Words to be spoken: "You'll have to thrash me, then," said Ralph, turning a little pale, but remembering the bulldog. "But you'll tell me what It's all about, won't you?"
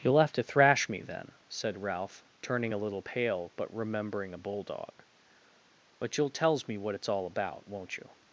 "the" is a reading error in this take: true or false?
true